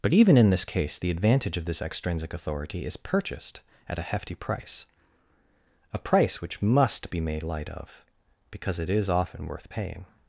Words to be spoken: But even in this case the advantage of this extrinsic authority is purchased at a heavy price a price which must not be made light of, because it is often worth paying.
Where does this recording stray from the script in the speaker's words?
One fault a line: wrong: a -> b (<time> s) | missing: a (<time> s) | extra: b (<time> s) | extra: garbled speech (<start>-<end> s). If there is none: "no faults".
wrong: heavy -> hefty (4.0 s)
missing: not (7.1 s)